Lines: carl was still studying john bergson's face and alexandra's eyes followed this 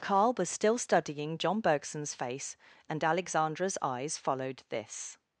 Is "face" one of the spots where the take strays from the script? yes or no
no